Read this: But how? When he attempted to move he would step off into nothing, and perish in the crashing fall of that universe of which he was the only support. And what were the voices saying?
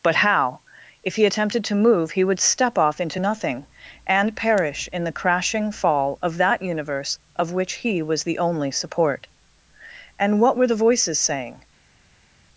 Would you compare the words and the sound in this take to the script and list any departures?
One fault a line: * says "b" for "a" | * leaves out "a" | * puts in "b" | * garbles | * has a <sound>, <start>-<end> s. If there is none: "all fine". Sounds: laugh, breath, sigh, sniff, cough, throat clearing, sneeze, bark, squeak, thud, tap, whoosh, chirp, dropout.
* says "If" for "When"